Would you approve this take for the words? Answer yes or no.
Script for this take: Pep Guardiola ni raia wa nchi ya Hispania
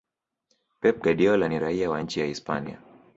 yes